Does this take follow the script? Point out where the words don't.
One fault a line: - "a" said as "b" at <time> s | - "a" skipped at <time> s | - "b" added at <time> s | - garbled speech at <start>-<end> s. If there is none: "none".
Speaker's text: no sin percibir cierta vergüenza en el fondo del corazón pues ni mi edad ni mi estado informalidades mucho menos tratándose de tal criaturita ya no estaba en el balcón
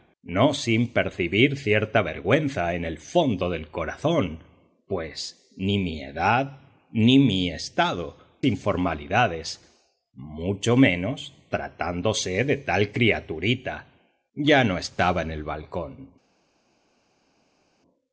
none